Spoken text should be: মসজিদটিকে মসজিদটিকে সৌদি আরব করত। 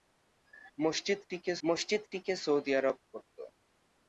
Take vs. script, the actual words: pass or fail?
pass